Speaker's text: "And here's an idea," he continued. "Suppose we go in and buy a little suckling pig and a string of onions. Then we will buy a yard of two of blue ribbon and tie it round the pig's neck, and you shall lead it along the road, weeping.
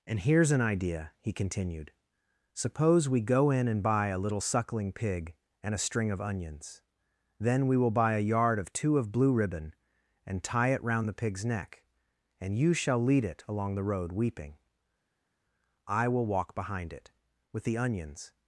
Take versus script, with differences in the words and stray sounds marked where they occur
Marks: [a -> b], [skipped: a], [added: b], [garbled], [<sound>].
"And here's an idea," he continued. "Suppose we go in and buy a little suckling pig and a string of onions. Then we will buy a yard of two of blue ribbon and tie it round the pig's neck, and you shall lead it along the road, weeping. [added: I will walk behind it with the onions]